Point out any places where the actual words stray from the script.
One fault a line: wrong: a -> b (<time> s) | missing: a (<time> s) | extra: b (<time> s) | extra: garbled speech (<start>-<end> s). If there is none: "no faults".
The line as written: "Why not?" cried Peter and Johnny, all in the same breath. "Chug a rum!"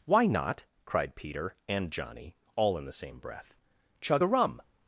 no faults